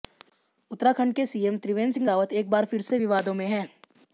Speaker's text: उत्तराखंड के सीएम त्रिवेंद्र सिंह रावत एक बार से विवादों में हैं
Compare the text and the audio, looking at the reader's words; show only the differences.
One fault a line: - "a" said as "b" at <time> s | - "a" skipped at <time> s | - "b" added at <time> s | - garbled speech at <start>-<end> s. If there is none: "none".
- "फिर" added at 2.7 s